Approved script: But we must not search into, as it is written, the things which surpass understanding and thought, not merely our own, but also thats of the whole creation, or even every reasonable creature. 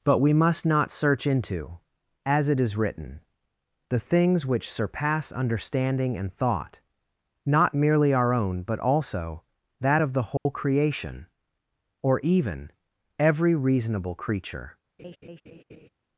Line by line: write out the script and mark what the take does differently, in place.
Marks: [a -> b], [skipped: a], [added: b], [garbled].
But we must not search into, as it is written, the things which surpass understanding and thought, not merely our own, but also [thats -> that] of the whole creation, or even every reasonable creature.